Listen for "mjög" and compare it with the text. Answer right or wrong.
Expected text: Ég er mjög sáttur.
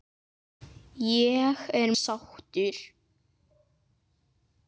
wrong